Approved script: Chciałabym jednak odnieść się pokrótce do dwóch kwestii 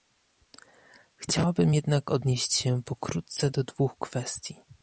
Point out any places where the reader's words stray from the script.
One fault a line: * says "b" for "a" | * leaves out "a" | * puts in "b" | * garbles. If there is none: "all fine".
all fine